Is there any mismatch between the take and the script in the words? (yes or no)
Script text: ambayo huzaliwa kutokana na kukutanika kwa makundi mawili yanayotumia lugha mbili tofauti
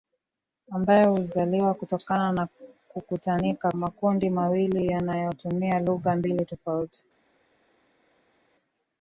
yes